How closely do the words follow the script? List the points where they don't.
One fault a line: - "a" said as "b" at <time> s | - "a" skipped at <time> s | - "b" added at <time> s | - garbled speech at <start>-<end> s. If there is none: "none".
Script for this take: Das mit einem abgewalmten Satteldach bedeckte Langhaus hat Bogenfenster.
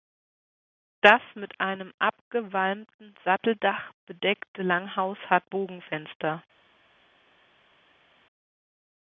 none